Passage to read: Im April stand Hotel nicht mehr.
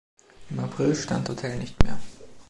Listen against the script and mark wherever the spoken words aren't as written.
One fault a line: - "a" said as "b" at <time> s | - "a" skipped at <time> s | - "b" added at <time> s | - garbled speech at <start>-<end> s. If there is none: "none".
none